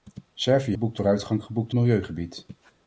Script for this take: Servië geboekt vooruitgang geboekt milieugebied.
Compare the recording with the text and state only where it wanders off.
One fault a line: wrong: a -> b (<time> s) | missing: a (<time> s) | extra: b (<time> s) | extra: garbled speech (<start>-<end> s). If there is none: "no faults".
no faults